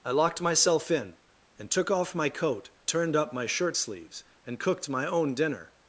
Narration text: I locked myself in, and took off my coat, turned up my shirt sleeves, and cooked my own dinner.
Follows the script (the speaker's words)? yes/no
yes